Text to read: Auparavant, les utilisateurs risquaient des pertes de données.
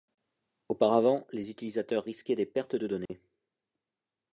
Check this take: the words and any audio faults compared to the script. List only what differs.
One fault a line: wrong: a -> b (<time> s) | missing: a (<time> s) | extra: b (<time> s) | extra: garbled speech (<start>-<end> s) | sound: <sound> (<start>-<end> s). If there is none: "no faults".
sound: dropout (3.1-3.1 s)